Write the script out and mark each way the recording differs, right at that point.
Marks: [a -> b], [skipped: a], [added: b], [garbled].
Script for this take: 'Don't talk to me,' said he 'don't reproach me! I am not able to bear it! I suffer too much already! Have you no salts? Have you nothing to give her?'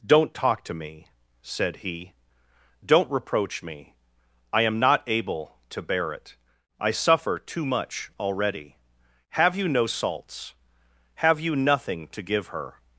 'Don't talk to me,' said he 'don't reproach me! I am not able to bear it! I suffer too much already! Have you no salts? Have you nothing to give her?'